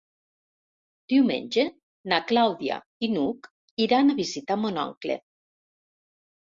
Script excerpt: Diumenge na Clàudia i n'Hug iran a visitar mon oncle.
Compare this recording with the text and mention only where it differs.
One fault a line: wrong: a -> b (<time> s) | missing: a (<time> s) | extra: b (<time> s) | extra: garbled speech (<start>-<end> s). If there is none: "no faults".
no faults